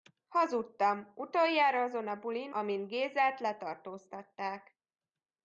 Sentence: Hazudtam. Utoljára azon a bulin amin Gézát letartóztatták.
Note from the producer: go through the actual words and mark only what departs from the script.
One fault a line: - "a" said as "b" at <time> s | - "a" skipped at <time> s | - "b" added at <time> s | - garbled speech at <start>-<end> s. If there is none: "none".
none